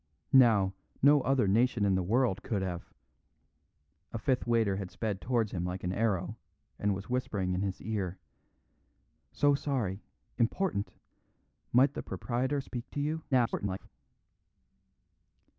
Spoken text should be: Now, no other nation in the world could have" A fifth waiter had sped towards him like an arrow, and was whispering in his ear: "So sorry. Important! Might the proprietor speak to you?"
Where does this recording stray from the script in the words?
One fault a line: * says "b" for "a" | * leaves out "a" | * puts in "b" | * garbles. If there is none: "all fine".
* garbles